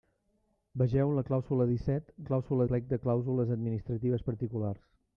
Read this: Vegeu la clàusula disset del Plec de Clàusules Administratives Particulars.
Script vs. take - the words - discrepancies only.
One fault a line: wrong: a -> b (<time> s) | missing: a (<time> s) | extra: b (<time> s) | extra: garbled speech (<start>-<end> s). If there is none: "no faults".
wrong: del -> clàusula (2.3 s)